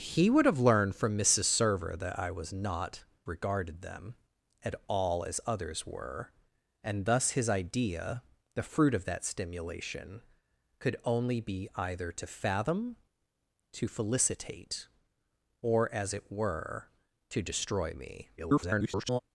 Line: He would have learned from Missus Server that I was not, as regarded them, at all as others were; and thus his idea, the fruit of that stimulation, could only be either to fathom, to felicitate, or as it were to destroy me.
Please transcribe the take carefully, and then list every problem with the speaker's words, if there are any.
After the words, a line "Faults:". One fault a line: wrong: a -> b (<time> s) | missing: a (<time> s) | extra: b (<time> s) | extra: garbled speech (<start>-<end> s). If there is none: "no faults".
He would have learned from Missus Server that I was not, regarded them, at all as others were; and thus his idea, the fruit of that stimulation, could only be either to fathom, to felicitate, or as it were to destroy me. [garbled]
Faults:
missing: as (3.0 s)
extra: garbled speech (18.4-19.2 s)